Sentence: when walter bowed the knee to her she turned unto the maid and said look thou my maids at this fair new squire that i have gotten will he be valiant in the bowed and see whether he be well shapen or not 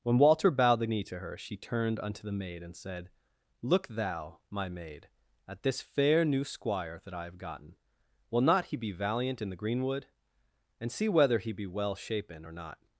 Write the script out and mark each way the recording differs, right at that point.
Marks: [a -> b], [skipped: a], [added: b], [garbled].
when walter bowed the knee to her she turned unto the maid and said look thou my [maids -> maid] at this fair new squire that i have gotten will [added: not] he be valiant in the [bowed -> greenwood] and see whether he be well shapen or not